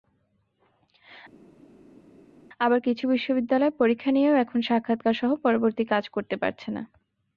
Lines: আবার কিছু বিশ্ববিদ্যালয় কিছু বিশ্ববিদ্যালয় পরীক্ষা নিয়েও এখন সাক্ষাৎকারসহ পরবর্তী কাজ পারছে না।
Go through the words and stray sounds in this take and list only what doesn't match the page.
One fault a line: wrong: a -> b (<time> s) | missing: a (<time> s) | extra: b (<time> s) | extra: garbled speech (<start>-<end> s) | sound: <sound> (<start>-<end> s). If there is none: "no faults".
missing: কিছু বিশ্ববিদ্যালয় (3.7 s)
extra: করতে (6.1 s)